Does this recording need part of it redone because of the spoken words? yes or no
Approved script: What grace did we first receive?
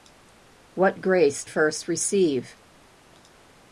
yes